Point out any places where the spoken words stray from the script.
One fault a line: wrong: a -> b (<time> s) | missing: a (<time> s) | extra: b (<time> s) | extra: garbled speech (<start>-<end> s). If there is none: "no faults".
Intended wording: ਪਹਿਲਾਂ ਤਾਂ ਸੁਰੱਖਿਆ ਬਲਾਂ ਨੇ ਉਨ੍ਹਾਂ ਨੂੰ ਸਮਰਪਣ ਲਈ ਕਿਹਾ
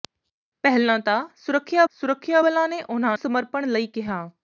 extra: ਸੁਰੱਖਿਆ (1.9 s)
missing: ਨੂੰ (3.2 s)